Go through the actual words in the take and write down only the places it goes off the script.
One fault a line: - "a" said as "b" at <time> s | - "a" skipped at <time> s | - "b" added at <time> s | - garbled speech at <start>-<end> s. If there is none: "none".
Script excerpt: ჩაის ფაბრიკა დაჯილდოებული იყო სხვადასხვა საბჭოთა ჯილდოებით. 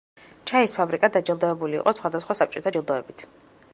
none